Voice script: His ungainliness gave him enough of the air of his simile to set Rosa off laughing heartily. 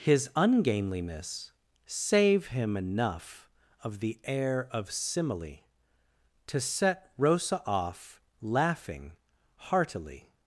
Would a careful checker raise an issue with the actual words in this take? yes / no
yes